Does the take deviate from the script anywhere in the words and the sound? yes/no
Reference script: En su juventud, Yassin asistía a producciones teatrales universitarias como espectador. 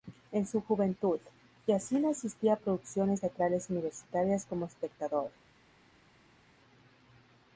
no